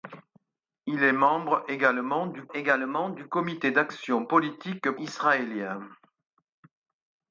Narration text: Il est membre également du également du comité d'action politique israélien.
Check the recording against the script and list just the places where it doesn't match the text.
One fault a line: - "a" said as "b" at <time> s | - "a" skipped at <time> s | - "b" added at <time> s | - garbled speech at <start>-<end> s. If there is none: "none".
none